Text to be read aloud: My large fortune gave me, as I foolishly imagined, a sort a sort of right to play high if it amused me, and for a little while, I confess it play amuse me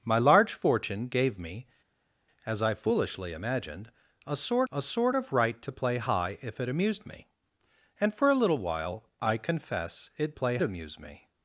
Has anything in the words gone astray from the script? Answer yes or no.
no